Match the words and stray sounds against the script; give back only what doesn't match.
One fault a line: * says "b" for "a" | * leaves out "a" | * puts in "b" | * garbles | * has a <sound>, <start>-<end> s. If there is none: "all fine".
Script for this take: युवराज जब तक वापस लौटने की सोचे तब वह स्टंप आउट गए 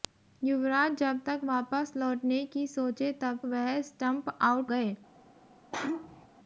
* has a sneeze, 5.7-6.3 s